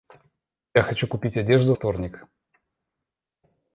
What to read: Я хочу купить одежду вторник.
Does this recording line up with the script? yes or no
yes